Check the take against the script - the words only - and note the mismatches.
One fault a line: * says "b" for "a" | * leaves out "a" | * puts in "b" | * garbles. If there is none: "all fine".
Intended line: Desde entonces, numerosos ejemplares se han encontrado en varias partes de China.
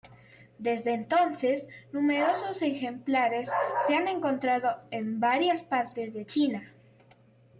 all fine